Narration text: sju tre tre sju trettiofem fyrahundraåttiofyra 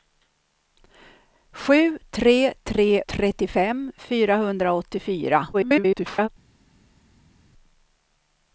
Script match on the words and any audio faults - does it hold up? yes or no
no